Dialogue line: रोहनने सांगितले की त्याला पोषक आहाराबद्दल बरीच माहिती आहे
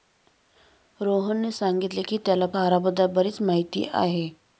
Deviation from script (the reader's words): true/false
true